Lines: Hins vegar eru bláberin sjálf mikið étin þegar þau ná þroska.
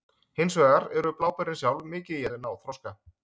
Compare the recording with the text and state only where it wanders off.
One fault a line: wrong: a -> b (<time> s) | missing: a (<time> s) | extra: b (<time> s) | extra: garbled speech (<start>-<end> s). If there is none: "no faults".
missing: étin þegar (2.2 s)